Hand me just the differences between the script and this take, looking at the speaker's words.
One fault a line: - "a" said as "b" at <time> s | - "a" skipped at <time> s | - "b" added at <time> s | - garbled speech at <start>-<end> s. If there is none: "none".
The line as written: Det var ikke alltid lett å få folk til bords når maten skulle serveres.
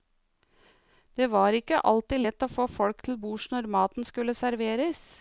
none